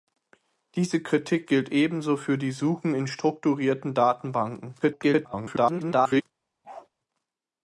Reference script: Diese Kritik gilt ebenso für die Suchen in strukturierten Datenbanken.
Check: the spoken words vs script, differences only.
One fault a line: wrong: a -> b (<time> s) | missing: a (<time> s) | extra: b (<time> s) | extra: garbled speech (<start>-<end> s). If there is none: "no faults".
extra: garbled speech (4.8-6.2 s)